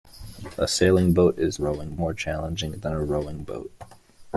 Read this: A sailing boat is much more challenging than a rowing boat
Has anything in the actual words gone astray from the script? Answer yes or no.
yes